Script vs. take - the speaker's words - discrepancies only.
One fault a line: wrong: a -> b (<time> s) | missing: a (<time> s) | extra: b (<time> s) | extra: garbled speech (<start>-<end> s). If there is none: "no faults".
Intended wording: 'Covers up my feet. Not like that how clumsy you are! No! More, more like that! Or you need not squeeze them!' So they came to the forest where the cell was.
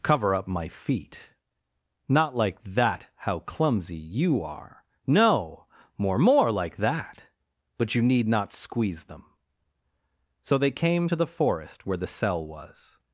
wrong: Covers -> Cover (0.0 s)
wrong: Or -> But (7.8 s)